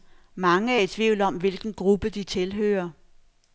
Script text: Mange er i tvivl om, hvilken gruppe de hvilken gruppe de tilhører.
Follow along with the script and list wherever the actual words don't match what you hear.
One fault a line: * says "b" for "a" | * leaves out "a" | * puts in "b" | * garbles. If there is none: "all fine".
* leaves out "hvilken gruppe de"